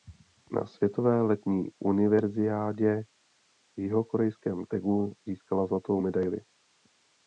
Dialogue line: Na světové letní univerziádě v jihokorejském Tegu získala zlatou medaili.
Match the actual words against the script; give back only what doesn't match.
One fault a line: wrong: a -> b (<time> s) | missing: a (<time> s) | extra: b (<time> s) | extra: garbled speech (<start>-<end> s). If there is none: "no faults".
no faults